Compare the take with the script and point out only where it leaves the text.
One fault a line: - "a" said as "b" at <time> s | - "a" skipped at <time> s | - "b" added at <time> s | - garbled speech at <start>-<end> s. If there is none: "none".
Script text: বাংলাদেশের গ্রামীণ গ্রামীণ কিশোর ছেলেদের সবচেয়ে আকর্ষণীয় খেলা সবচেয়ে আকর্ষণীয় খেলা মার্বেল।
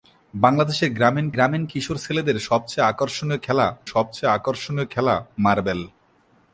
none